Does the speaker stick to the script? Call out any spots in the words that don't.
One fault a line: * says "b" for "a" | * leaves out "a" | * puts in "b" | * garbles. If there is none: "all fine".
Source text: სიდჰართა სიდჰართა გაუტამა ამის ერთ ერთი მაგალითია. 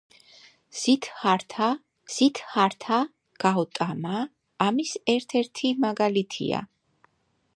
all fine